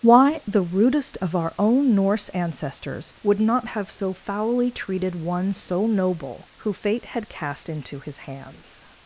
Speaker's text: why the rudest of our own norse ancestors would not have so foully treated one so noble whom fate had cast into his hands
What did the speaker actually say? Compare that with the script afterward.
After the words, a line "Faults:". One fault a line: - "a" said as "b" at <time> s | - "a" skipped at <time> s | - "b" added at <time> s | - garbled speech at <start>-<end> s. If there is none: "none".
why the rudest of our own norse ancestors would not have so foully treated one so noble who fate had cast into his hands
Faults:
- "whom" said as "who" at 6.6 s